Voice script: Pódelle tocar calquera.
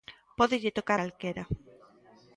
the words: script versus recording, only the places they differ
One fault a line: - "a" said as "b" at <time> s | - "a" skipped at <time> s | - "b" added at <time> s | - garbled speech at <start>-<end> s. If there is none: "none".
none